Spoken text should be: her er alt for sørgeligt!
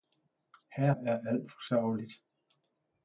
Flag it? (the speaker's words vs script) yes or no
no